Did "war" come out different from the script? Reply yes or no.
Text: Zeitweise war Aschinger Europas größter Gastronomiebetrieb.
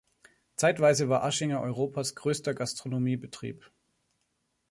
no